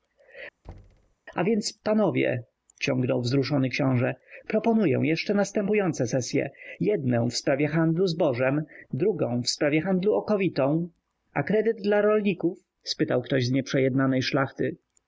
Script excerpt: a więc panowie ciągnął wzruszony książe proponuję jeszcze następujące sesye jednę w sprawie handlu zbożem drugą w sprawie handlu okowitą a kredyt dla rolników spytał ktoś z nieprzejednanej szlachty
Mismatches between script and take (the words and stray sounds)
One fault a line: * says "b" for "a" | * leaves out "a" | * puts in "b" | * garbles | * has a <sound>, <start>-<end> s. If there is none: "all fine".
* has a thud, 0.6-1.2 s